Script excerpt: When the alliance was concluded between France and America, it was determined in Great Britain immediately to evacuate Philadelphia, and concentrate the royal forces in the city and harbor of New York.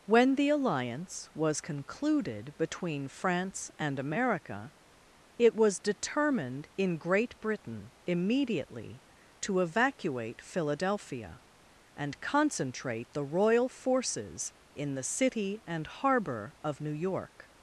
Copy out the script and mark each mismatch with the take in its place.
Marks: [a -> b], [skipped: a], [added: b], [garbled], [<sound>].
When the alliance was concluded between France and America, it was determined in Great Britain immediately to evacuate Philadelphia, and concentrate the royal forces in the city and harbor of New York.